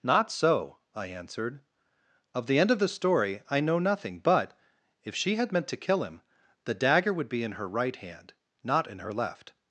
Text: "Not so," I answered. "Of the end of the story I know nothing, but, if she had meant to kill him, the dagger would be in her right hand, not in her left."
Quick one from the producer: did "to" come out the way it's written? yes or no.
yes